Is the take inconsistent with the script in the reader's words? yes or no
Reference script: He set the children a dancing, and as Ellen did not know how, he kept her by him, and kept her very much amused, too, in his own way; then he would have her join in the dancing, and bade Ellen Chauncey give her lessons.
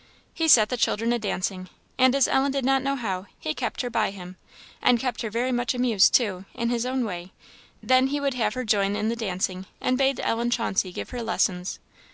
no